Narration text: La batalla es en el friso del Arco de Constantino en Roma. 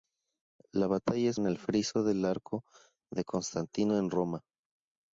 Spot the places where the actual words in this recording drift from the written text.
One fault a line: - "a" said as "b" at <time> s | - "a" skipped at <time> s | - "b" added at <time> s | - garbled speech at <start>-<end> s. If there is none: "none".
none